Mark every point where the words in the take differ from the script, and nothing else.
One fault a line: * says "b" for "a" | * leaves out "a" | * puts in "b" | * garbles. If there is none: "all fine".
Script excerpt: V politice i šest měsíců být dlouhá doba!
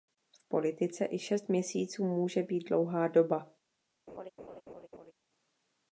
* puts in "může"